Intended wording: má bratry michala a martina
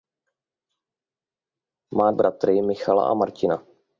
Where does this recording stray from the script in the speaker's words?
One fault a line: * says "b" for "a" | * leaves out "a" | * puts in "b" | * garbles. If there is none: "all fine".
all fine